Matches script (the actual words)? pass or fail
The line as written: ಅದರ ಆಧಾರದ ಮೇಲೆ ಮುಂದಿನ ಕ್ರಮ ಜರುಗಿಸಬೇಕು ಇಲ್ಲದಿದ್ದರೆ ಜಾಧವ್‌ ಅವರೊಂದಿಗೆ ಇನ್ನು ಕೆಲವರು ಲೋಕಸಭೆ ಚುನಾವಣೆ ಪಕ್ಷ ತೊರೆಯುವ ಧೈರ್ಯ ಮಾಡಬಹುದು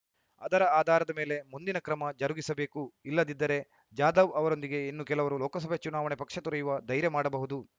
pass